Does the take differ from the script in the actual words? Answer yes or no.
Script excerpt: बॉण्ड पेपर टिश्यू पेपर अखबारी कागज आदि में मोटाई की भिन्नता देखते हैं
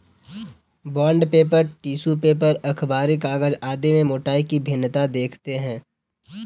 no